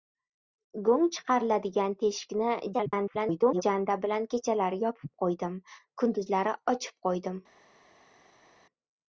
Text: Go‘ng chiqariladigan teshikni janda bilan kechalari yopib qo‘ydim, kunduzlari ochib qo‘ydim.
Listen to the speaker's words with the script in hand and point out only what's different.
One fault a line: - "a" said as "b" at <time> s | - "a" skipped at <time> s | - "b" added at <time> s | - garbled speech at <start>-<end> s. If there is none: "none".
- garbled speech at 2.7-3.6 s